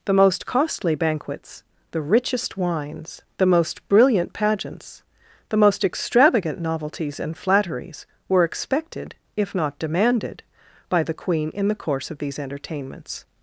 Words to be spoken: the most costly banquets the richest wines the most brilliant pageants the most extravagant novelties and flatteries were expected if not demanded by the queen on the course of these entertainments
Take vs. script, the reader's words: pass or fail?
fail